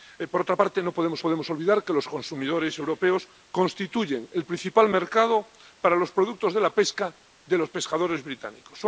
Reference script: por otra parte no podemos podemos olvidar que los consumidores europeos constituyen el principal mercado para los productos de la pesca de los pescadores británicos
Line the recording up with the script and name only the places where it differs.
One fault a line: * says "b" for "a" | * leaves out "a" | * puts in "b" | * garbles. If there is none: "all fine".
all fine